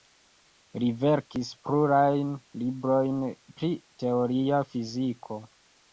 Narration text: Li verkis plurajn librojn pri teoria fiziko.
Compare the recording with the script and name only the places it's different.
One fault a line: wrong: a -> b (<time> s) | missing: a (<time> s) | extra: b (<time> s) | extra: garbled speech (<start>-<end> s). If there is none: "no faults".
no faults